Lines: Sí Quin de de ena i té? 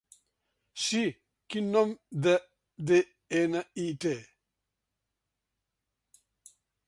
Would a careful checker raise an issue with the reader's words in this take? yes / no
yes